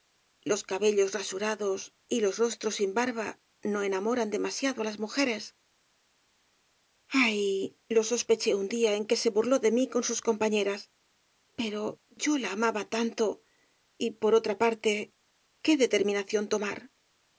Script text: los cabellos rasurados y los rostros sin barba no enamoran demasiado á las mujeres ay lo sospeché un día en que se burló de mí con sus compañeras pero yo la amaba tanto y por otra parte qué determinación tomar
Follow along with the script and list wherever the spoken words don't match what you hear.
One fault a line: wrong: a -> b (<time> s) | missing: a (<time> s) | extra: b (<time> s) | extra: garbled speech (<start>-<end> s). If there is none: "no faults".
no faults